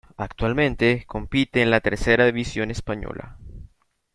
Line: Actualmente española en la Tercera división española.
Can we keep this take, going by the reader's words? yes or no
no